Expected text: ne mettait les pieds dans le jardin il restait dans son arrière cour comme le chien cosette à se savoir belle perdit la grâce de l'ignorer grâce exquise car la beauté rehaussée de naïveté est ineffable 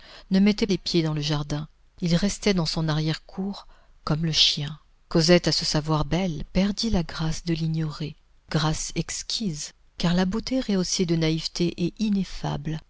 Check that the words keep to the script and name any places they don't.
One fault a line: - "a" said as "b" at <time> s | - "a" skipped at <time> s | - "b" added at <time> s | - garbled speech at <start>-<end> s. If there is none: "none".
none